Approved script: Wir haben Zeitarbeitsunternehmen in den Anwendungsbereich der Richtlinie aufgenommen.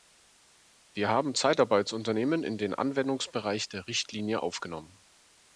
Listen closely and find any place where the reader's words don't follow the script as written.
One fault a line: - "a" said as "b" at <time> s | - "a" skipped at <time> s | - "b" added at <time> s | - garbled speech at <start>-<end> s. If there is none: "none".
none